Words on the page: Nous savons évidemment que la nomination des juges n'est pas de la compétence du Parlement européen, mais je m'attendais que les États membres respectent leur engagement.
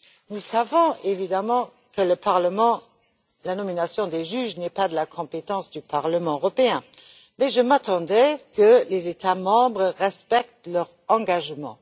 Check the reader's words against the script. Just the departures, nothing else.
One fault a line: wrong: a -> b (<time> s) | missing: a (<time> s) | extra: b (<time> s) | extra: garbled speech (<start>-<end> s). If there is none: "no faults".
no faults